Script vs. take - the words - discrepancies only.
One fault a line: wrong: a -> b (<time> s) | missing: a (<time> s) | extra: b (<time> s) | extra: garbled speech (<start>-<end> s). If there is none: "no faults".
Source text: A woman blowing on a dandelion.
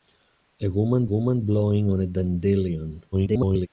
extra: woman (1.0 s)
extra: garbled speech (3.1-3.7 s)